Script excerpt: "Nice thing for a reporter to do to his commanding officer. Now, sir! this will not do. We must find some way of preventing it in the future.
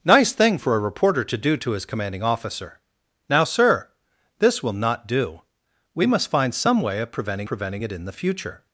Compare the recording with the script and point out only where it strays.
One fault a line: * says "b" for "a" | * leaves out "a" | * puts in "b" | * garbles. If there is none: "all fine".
* puts in "preventing"